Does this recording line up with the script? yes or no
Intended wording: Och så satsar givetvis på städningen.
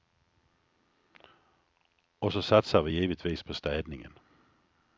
no